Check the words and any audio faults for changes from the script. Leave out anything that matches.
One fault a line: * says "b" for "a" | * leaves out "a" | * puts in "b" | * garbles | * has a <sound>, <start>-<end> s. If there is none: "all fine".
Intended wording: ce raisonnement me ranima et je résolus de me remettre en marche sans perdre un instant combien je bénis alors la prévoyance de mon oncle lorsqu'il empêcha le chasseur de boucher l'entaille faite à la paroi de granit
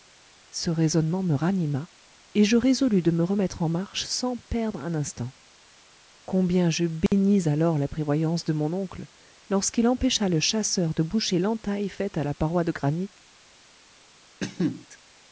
* has a dropout, 7.1-7.1 s
* has a cough, 14.4-14.9 s